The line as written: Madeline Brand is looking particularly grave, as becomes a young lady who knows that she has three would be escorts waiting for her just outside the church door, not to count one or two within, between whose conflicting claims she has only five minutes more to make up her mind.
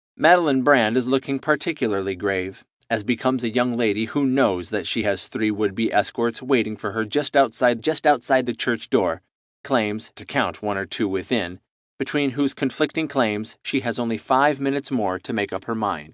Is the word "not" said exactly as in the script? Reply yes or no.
no